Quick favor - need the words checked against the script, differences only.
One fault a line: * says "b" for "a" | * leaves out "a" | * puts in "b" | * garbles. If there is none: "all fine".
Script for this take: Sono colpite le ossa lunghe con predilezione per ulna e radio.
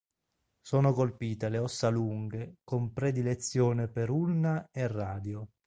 all fine